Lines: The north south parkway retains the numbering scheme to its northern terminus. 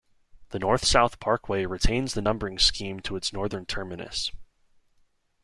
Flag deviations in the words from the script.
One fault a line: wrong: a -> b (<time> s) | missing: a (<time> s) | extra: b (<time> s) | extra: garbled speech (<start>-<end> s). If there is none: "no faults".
no faults